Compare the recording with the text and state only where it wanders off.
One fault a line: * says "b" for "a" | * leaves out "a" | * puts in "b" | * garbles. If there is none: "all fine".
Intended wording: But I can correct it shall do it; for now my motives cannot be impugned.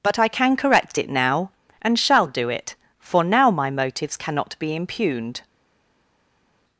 * puts in "now and"